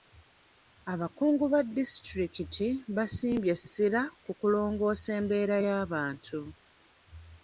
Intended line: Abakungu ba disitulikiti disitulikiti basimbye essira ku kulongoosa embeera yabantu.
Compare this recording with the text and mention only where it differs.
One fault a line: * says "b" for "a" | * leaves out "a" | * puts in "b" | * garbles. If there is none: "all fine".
* leaves out "disitulikiti"